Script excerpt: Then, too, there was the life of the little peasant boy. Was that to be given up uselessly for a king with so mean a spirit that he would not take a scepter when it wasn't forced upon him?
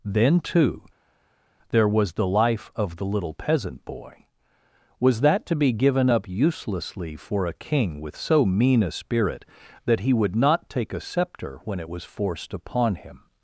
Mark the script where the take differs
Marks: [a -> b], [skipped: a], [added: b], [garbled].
Then, too, there was the life of the little peasant boy. Was that to be given up uselessly for a king with so mean a spirit that he would not take a scepter when it [wasn't -> was] forced upon him?